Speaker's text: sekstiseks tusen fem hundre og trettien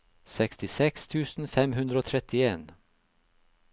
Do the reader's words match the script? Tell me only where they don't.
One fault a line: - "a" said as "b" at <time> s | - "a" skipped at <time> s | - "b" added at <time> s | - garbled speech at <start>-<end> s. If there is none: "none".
none